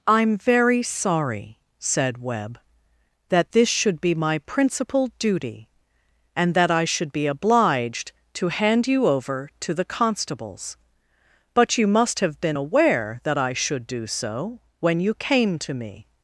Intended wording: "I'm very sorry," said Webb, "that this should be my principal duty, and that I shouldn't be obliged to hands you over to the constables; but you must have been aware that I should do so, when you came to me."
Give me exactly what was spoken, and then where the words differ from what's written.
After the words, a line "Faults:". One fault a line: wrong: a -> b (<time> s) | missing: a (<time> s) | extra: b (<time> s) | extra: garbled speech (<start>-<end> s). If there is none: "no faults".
"I'm very sorry," said Webb, "that this should be my principal duty, and that I should be obliged to hand you over to the constables; but you must have been aware that I should do so, when you came to me."
Faults:
wrong: shouldn't -> should (6.8 s)
wrong: hands -> hand (8.5 s)